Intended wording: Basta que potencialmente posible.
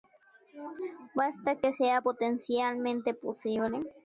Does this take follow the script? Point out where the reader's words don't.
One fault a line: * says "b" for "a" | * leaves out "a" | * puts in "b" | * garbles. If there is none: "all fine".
* puts in "sea"